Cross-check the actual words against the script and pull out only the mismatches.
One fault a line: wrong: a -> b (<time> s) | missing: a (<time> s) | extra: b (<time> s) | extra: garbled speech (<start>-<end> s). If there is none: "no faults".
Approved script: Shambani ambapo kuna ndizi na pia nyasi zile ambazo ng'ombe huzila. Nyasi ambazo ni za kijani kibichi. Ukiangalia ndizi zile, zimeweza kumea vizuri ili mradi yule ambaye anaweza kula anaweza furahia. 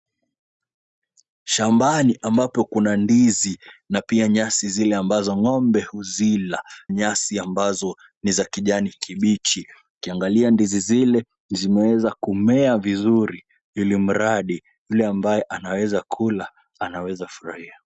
no faults